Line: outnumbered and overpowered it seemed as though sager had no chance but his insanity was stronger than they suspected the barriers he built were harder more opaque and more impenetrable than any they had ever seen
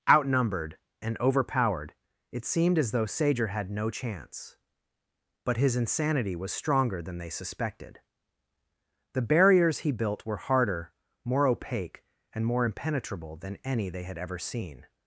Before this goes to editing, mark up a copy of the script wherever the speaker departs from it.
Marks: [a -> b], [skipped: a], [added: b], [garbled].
outnumbered and overpowered it seemed as though sager had no chance but his insanity was stronger than they suspected the barriers he built were harder more opaque and more impenetrable than any they had ever seen